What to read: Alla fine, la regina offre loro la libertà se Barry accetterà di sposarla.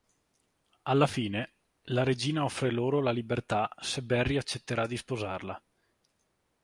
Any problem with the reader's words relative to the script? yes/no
no